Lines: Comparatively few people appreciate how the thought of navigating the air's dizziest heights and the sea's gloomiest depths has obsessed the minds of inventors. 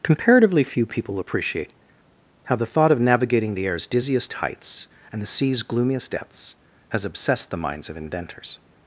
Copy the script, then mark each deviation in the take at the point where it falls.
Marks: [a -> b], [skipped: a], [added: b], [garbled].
Comparatively few people appreciate how the thought of navigating the air's dizziest heights and the sea's gloomiest depths has obsessed the minds of inventors.